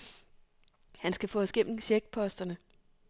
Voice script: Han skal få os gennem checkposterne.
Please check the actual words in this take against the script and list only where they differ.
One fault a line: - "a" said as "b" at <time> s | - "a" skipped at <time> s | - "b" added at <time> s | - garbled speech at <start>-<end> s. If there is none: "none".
none